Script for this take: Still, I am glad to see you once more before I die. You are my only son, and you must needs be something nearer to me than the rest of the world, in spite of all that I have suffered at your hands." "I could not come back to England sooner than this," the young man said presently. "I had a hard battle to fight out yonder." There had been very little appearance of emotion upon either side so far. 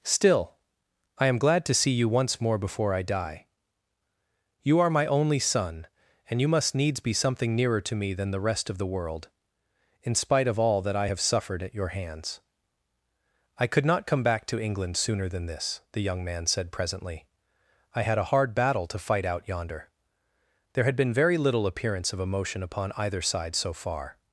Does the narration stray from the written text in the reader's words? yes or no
no